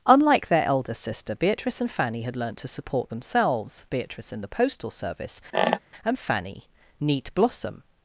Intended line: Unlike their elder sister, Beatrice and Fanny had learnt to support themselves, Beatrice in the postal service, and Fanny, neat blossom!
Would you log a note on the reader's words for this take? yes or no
no